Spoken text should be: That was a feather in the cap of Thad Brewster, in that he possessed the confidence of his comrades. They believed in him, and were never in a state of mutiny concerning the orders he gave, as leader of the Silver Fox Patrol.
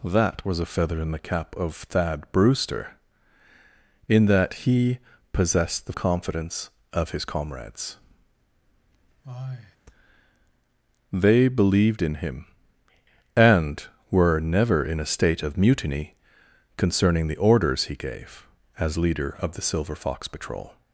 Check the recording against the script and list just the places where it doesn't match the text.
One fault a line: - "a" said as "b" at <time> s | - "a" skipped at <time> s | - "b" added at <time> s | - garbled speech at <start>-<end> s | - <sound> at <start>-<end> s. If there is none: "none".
- sigh at 9.2-9.8 s